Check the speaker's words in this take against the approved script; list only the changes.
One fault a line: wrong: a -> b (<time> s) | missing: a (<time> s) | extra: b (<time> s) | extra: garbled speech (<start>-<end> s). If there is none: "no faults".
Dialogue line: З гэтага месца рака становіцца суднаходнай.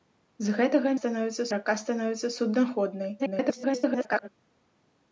wrong: месца -> становіцца (1.0 s)
extra: garbled speech (3.2-4.3 s)